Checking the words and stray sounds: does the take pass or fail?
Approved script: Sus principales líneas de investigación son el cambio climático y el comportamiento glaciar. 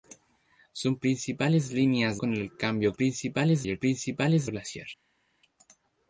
fail